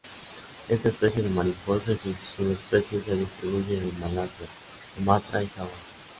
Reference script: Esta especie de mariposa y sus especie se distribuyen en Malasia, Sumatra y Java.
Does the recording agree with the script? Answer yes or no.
no